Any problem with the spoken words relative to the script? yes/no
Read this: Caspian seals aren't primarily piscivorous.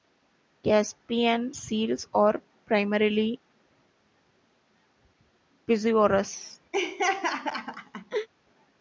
yes